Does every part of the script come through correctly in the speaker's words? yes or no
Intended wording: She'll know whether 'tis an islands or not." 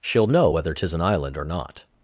no